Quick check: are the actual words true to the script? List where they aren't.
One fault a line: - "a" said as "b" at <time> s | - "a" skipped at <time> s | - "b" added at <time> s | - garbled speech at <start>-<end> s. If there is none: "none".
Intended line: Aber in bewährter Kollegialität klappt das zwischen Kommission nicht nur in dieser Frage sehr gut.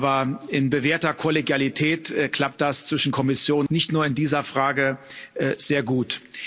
none